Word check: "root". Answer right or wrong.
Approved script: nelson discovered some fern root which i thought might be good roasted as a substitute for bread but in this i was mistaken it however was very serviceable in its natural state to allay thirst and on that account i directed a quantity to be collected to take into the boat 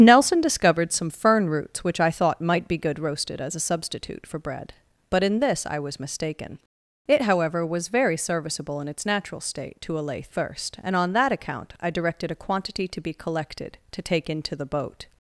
wrong